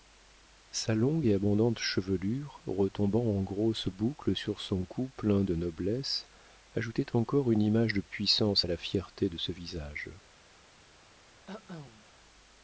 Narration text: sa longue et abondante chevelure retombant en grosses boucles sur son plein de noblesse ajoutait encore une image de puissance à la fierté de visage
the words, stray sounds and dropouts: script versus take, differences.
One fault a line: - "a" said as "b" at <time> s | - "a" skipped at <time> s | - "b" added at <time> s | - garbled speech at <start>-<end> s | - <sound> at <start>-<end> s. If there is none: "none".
- "cou" added at 4.9 s
- "ce" added at 9.4 s
- cough at 11.5-12.1 s